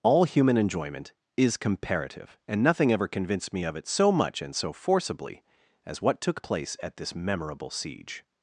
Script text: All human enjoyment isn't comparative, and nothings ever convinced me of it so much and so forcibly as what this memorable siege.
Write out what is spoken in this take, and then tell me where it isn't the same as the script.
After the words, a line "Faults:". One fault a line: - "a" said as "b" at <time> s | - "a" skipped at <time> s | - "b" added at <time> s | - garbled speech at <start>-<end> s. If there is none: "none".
All human enjoyment is comparative, and nothing ever convinced me of it so much and so forcibly as what took place at this memorable siege.
Faults:
- "isn't" said as "is" at 1.4 s
- "nothings" said as "nothing" at 2.6 s
- "took place at" added at 6.2 s